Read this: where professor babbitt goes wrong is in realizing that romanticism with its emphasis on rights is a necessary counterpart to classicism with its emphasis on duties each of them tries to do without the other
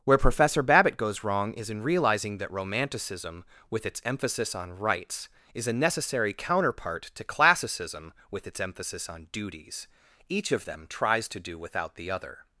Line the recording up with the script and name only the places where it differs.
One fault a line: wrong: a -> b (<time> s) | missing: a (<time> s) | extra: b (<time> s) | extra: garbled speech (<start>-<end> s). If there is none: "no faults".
no faults